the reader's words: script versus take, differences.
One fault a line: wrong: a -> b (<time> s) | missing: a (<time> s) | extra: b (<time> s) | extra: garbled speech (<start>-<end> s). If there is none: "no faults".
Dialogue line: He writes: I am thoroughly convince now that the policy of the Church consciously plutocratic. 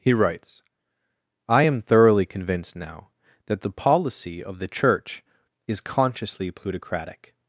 wrong: convince -> convinced (2.2 s)
extra: is (5.7 s)